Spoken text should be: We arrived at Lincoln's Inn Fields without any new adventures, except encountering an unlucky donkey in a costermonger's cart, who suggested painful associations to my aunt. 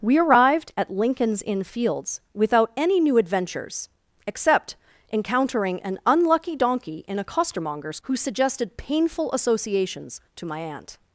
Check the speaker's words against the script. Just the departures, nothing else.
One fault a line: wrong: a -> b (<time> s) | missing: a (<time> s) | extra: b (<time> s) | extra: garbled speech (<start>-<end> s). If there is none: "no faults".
missing: cart (8.0 s)